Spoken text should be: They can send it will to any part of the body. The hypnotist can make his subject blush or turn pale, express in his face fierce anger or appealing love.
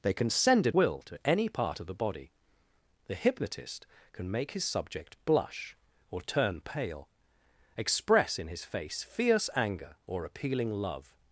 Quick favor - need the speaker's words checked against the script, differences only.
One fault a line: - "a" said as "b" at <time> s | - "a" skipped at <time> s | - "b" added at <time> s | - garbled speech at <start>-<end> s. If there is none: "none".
none